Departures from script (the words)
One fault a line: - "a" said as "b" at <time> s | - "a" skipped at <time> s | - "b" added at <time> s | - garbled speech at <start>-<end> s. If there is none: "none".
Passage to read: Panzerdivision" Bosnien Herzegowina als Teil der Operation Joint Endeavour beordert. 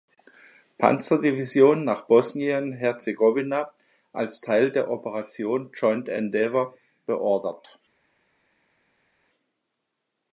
- "nach" added at 1.8 s